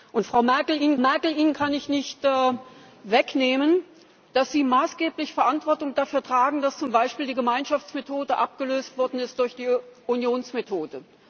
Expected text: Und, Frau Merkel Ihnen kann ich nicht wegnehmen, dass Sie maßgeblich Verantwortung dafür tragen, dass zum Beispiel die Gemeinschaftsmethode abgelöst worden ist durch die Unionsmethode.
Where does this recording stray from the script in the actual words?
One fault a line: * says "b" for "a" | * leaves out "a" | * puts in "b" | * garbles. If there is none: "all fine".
* puts in "Merkel Ihnen"